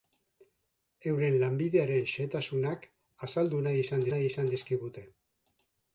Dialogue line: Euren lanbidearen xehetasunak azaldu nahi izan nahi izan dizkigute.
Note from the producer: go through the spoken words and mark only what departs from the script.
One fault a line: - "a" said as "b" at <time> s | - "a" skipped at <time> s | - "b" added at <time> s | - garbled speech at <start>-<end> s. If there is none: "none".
none